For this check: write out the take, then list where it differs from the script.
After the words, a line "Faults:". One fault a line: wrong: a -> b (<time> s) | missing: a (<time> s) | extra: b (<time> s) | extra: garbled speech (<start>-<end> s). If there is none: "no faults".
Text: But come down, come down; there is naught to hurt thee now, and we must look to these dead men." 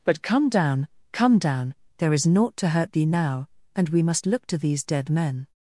But come down, come down; there is naught to hurt thee now, and we must look to these dead men."
Faults:
no faults